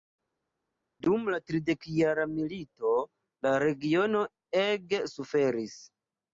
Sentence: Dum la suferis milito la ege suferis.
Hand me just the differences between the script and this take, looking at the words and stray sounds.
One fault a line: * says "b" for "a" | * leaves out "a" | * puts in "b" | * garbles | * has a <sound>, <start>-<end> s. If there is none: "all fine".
* says "tridekjara" for "suferis"
* puts in "regiono"